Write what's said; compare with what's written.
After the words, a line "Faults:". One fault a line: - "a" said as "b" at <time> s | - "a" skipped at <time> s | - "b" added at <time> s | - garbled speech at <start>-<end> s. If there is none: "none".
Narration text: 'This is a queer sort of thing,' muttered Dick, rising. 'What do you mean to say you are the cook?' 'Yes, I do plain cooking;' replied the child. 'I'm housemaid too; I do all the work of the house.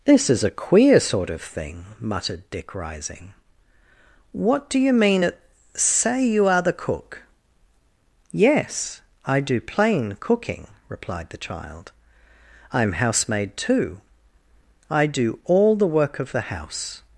'This is a queer sort of thing,' muttered Dick, rising. 'What do you mean at say you are the cook?' 'Yes, I do plain cooking;' replied the child. 'I'm housemaid too; I do all the work of the house.
Faults:
- "to" said as "at" at 5.2 s